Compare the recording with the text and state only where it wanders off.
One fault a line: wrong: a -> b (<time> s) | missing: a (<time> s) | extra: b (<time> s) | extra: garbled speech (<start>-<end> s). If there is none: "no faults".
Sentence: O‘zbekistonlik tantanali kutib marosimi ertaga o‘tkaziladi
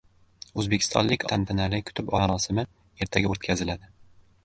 no faults